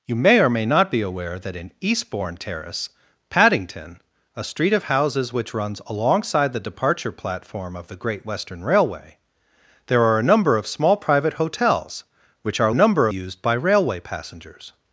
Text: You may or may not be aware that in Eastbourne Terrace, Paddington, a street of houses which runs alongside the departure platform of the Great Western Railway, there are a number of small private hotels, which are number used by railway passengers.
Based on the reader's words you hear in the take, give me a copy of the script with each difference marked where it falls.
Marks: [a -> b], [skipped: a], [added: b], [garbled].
You may or may not be aware that in Eastbourne Terrace, Paddington, a street of houses which runs alongside the departure platform of the Great Western Railway, there are a number of small private hotels, which are number used by railway passengers.